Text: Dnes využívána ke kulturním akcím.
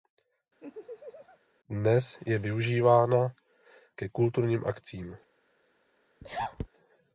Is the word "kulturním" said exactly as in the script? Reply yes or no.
yes